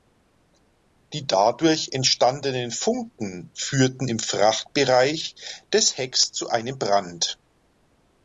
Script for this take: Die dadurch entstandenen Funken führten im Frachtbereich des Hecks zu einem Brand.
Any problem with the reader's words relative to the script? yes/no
no